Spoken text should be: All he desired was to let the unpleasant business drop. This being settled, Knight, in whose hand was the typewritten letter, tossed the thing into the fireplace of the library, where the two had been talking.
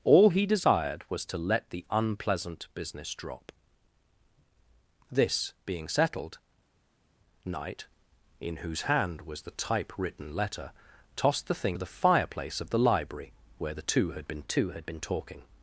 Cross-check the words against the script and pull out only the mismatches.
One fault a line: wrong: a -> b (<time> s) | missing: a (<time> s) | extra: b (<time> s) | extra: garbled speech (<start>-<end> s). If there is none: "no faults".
missing: into (11.8 s)
extra: two had been (14.4 s)